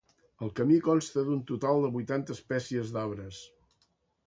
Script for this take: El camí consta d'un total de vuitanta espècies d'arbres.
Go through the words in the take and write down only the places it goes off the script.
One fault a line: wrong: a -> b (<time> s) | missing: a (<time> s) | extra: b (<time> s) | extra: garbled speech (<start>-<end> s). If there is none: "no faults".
no faults